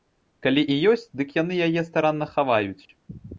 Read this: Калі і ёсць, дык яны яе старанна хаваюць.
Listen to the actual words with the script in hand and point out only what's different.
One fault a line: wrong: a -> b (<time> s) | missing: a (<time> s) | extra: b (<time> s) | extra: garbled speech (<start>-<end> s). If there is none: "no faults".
no faults